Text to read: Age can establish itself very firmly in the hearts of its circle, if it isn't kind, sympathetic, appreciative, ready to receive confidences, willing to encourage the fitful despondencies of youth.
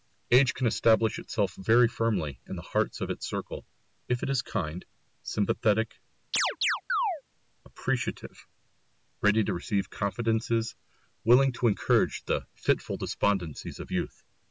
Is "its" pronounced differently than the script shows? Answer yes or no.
no